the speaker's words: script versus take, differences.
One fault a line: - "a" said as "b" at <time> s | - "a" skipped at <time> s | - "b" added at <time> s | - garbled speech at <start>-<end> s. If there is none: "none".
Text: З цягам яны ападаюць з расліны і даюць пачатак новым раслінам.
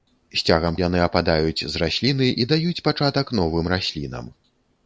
none